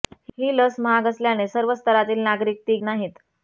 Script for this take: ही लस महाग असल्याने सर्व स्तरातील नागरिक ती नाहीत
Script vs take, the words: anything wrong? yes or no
no